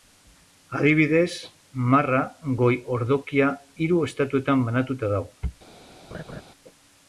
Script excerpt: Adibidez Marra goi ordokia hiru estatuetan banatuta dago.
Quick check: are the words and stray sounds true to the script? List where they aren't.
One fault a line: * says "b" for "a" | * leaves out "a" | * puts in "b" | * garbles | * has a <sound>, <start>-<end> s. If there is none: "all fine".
* has a laugh, 6.1-6.4 s